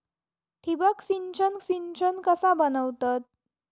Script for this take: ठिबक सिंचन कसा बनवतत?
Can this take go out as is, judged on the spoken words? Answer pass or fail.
fail